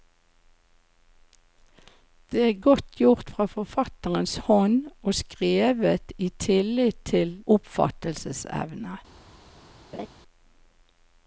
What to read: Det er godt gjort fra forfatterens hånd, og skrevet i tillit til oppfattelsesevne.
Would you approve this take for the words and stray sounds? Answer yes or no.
no